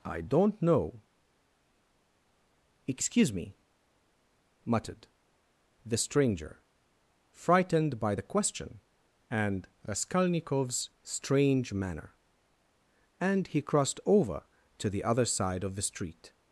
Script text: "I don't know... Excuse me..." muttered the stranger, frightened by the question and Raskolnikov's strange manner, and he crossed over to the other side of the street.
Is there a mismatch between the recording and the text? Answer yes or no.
no